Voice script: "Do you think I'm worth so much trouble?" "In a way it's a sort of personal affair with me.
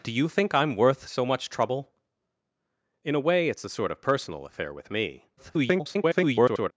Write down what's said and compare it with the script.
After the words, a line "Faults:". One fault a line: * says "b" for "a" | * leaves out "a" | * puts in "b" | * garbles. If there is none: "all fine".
"Do you think I'm worth so much trouble?" "In a way it's a sort of personal affair with me. [garbled]
Faults:
* garbles